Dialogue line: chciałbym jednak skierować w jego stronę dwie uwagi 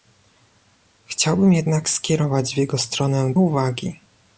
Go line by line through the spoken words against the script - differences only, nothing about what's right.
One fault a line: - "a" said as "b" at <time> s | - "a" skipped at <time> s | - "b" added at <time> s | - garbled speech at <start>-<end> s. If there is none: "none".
- "dwie" skipped at 3.3 s